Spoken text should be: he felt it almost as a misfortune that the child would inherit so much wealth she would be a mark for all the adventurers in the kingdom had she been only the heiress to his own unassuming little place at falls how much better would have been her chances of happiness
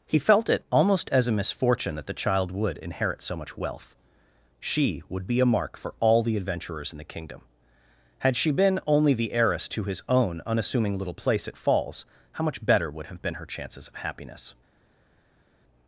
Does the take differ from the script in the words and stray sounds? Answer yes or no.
no